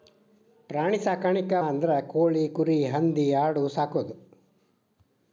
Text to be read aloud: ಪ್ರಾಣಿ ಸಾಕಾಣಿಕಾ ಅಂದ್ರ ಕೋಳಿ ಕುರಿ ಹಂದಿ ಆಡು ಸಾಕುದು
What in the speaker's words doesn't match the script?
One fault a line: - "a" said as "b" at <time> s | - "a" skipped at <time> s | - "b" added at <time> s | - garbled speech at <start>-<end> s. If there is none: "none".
none